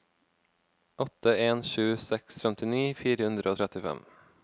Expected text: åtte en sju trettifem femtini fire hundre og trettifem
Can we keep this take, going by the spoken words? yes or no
no